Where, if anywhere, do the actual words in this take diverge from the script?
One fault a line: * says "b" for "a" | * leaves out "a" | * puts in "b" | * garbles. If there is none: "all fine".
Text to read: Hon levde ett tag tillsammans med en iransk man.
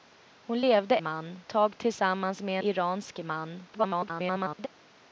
* says "man" for "ett"
* leaves out "en"
* garbles